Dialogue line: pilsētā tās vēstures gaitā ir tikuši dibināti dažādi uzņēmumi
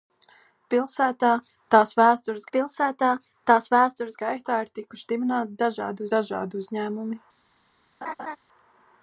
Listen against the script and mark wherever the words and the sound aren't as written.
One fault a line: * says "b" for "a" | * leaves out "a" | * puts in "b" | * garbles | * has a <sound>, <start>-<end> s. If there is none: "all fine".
* puts in "pilsētā tās vēstures"
* puts in "dažādi"
* has a laugh, 8.0-8.4 s